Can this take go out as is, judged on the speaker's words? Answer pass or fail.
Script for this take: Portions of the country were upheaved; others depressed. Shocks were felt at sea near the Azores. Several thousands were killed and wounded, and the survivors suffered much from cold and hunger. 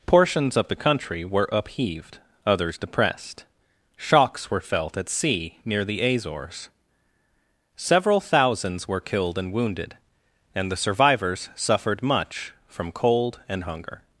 pass